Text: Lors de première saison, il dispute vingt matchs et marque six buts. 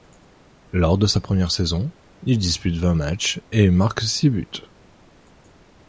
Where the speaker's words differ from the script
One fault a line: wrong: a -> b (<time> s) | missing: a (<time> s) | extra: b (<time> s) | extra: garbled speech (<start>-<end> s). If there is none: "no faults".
extra: sa (1.1 s)